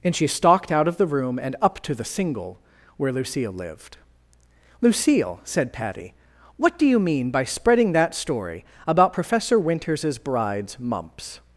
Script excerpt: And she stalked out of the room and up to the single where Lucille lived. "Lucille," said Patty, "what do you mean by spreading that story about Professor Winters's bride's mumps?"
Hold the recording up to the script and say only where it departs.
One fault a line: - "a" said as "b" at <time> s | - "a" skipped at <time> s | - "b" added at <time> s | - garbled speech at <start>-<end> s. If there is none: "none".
none